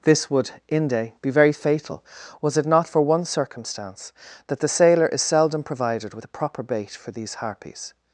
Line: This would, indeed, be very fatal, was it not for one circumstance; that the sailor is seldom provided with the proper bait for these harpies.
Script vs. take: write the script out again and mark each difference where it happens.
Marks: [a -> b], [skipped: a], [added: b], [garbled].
This would, [indeed, -> inde] be very fatal, was it not for one circumstance; that the sailor is seldom provided with the proper bait for these harpies.